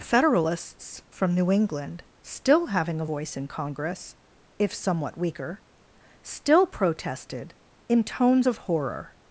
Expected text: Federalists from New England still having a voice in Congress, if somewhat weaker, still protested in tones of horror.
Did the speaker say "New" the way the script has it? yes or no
yes